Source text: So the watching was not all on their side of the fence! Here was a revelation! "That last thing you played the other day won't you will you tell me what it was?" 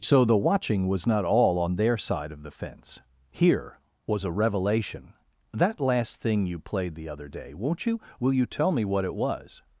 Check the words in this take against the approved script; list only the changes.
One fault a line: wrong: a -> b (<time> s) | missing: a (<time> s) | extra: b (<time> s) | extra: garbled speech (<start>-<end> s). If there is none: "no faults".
no faults